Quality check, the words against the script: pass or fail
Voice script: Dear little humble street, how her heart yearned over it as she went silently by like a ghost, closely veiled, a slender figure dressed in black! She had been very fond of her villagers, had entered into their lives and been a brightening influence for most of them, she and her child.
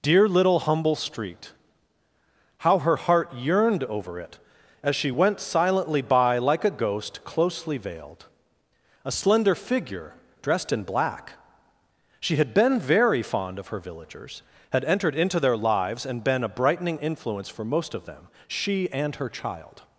pass